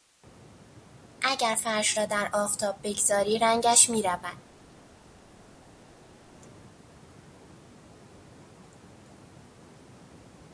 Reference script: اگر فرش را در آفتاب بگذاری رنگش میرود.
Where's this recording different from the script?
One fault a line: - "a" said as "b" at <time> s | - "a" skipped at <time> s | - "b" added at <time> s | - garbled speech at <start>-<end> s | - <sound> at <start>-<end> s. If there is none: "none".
none